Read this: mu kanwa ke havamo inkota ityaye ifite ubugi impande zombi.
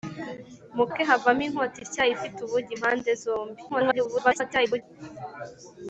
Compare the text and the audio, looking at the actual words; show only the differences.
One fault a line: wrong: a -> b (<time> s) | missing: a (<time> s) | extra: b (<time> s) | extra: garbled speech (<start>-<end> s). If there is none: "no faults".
missing: kanwa (0.8 s)
extra: garbled speech (3.7-4.8 s)